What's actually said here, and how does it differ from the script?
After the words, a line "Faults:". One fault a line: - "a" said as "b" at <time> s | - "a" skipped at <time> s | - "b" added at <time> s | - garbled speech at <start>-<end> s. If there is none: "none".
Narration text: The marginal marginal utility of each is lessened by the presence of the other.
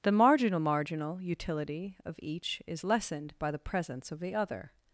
The marginal marginal utility of each is lessened by the presence of the other.
Faults:
none